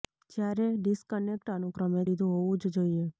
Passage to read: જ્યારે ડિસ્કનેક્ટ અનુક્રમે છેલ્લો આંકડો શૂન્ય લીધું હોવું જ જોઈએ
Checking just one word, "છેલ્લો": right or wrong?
wrong